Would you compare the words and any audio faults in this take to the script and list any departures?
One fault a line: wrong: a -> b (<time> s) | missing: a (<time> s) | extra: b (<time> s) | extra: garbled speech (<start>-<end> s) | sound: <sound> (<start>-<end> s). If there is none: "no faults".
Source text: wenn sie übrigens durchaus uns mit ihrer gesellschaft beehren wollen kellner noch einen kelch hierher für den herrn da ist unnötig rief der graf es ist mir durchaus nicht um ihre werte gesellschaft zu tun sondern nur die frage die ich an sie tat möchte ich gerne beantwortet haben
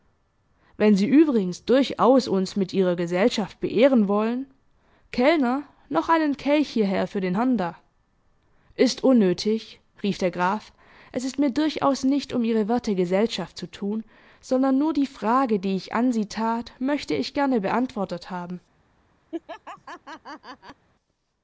sound: laugh (19.3-20.9 s)